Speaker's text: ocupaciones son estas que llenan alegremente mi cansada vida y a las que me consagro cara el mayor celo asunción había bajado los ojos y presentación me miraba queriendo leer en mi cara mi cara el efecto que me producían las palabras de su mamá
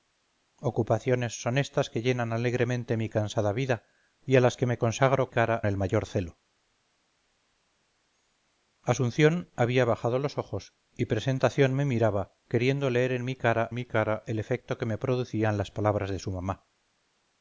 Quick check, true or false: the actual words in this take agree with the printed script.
true